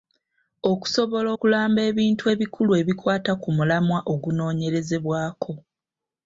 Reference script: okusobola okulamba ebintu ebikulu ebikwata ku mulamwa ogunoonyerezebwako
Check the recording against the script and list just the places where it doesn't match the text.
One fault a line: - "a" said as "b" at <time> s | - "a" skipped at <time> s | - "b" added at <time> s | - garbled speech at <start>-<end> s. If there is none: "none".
none